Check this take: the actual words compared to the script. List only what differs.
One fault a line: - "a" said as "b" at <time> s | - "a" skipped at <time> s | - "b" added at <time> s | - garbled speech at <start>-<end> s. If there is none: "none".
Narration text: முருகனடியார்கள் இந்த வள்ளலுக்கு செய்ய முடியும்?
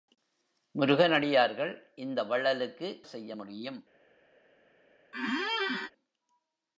none